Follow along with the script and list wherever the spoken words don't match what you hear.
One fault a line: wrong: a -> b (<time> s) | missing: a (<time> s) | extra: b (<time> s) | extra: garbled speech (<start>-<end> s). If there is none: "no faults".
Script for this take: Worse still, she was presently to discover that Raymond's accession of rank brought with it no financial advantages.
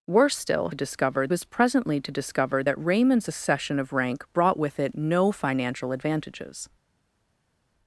wrong: she -> discover (0.7 s)